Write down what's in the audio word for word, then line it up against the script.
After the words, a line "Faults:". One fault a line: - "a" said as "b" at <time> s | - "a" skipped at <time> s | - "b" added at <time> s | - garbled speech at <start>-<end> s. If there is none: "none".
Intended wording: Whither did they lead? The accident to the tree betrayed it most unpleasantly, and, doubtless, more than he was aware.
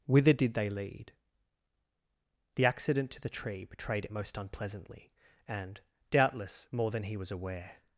Whither did they lead? The accident to the tree betrayed it most unpleasantly, and, doubtless, more than he was aware.
Faults:
none